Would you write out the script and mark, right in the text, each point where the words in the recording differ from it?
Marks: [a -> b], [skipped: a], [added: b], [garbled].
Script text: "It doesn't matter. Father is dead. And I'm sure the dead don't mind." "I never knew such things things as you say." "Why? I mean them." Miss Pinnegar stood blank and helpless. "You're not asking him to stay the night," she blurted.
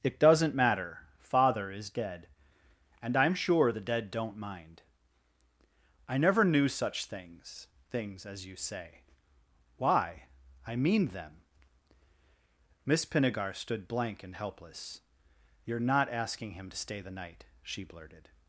"It doesn't matter. Father is dead. And I'm sure the dead don't mind." "I never knew such things things as you say." "Why? I mean them." Miss Pinnegar stood blank and helpless. "You're not asking him to stay the night," she blurted.